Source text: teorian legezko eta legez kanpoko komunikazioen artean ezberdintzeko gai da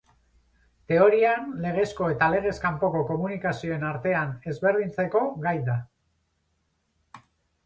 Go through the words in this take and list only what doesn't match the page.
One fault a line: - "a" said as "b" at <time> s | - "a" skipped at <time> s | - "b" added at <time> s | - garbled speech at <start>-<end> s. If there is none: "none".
none